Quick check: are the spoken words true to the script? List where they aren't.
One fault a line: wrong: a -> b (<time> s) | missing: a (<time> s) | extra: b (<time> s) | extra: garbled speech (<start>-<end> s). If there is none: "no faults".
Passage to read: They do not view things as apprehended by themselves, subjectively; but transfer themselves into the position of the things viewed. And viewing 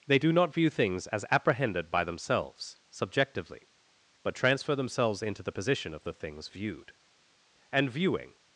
no faults